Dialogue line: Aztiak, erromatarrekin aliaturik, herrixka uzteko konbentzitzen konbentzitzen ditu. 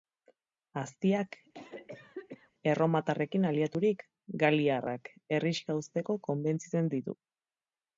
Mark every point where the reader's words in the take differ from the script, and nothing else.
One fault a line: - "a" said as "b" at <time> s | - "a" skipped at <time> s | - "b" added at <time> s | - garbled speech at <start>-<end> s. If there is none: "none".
- "galiarrak" added at 4.4 s
- "konbentzitzen" skipped at 6.9 s